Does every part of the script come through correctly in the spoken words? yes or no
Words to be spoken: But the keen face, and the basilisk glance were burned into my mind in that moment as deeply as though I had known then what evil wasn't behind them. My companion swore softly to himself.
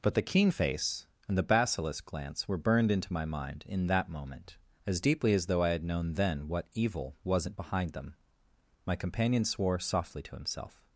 yes